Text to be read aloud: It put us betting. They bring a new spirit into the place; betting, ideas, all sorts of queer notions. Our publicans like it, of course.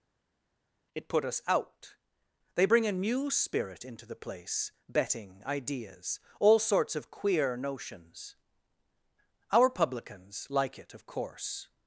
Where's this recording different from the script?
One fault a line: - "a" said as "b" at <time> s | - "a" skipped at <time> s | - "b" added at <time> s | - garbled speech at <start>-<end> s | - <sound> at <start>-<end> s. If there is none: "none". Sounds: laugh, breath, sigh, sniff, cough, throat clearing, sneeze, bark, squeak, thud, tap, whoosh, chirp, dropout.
- "betting" said as "out" at 1.5 s